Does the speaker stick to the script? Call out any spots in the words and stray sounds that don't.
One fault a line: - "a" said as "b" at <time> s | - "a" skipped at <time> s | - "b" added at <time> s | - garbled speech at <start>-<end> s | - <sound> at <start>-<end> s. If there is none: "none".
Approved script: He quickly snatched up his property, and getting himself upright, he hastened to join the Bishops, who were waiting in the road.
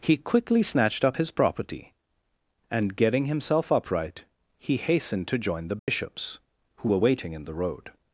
- dropout at 5.8-5.9 s